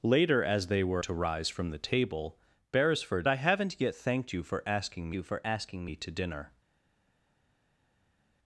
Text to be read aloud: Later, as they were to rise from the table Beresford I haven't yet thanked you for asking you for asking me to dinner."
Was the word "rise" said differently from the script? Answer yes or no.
no